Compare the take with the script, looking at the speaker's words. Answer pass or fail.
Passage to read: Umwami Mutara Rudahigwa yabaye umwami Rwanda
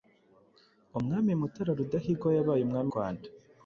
pass